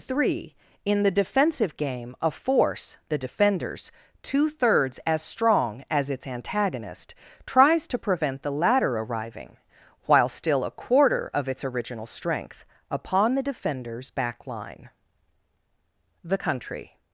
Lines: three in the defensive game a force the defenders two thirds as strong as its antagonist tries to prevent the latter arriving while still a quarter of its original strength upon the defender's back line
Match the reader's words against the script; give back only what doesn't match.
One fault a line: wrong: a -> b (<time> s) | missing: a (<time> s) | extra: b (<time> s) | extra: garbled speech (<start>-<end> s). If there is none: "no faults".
extra: the country (16.2 s)